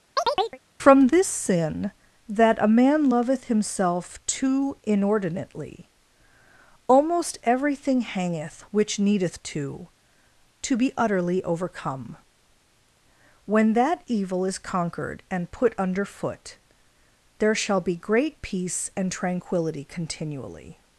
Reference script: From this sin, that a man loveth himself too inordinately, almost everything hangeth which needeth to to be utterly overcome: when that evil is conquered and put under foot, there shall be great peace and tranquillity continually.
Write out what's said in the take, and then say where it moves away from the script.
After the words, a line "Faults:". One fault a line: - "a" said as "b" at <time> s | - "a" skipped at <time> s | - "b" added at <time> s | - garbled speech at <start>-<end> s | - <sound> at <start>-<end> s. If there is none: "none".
From this sin, that a man loveth himself too inordinately, almost everything hangeth which needeth to to be utterly overcome: when that evil is conquered and put under foot, there shall be great peace and tranquillity continually.
Faults:
- chirp at 0.2-0.6 s